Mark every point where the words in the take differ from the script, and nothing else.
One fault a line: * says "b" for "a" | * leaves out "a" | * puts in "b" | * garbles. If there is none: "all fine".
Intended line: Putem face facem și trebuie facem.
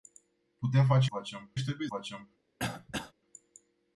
all fine